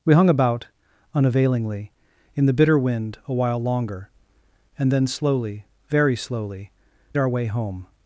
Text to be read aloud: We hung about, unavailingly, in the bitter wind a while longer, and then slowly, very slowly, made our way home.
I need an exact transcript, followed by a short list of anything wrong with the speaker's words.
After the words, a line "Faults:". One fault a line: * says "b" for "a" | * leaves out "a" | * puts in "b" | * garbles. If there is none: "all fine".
We hung about, unavailingly, in the bitter wind a while longer, and then slowly, very slowly, our way home.
Faults:
* leaves out "made"